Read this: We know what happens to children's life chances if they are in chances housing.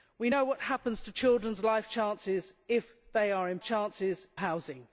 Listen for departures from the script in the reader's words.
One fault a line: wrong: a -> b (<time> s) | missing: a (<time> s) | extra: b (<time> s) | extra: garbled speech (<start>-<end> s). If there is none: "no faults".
no faults